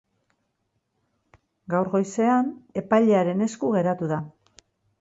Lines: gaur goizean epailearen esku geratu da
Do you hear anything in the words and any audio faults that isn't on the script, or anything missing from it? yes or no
no